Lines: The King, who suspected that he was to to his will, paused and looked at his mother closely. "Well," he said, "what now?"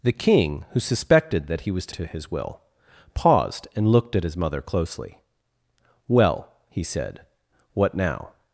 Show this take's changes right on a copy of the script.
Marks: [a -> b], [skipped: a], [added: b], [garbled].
The King, who suspected that he was to to his will, paused and looked at his mother closely. "Well," he said, "what now?"